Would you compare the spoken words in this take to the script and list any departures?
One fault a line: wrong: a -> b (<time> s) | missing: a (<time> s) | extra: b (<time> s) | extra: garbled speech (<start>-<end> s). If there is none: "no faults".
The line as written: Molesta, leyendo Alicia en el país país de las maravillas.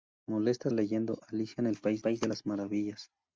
no faults